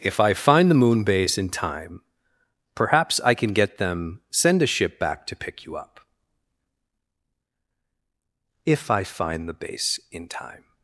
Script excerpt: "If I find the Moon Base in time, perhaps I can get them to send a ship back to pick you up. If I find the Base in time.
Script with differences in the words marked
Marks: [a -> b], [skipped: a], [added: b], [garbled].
"If I find the Moon Base in time, perhaps I can get them [skipped: to] send a ship back to pick you up. If I find the Base in time.